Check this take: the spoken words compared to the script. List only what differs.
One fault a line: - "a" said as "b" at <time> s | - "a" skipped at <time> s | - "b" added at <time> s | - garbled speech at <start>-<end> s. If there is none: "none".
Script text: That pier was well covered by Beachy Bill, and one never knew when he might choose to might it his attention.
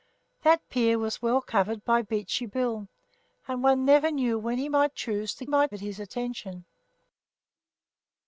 none